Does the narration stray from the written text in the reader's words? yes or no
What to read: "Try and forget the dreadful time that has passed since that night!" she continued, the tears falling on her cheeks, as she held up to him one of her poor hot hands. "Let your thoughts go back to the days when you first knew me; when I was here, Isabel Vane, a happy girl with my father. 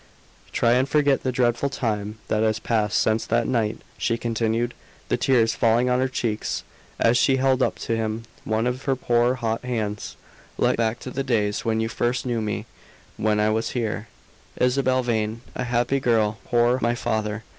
yes